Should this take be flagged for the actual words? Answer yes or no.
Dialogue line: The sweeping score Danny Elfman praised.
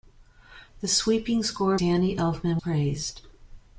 no